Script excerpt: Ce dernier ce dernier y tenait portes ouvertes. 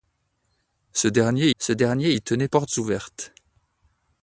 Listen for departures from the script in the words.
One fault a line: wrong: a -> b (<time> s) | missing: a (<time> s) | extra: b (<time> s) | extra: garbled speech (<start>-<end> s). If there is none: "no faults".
no faults